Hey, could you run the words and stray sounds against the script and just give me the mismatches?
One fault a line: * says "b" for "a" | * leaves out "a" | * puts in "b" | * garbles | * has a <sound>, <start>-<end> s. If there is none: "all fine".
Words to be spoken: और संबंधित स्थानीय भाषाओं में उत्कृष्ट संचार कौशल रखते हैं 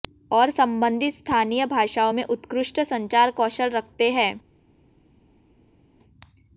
all fine